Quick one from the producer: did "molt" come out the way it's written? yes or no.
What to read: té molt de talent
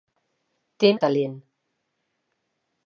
no